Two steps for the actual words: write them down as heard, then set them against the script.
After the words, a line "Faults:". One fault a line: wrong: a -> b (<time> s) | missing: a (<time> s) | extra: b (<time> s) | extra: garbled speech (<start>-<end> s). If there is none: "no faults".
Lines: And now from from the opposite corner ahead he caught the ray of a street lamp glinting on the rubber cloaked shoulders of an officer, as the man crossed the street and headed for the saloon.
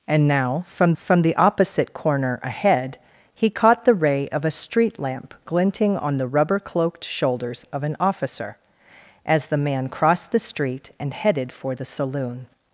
And now from from the opposite corner ahead he caught the ray of a street lamp glinting on the rubber cloaked shoulders of an officer, as the man crossed the street and headed for the saloon.
Faults:
no faults